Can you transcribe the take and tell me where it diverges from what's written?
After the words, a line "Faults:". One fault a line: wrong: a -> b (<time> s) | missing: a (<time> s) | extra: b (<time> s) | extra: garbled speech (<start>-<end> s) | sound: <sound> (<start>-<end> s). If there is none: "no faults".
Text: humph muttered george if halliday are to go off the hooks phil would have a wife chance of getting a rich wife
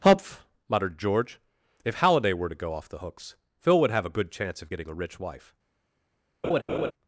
humph muttered george if halliday were to go off the hooks phil would have a good chance of getting a rich wife
Faults:
wrong: are -> were (2.3 s)
wrong: wife -> good (4.2 s)
sound: laugh (6.4-6.9 s)